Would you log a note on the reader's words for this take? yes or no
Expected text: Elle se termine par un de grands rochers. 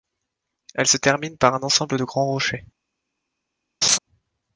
yes